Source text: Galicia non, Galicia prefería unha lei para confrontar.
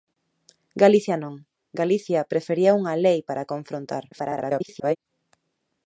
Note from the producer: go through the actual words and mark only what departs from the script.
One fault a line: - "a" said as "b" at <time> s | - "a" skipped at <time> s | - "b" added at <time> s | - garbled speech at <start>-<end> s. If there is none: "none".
- garbled speech at 4.1-5.0 s